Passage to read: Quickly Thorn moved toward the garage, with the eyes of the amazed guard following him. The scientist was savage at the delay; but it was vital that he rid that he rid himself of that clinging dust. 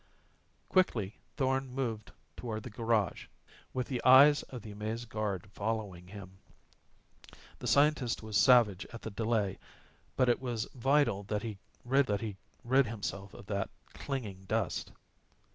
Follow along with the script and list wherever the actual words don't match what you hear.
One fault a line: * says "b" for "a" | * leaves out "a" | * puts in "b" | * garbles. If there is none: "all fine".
all fine